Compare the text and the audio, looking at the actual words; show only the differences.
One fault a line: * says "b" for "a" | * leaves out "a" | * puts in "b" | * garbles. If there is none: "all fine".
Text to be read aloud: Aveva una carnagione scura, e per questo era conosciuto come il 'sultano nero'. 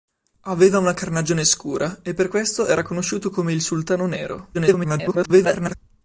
* garbles